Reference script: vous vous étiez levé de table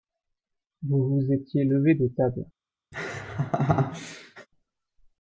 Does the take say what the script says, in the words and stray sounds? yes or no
no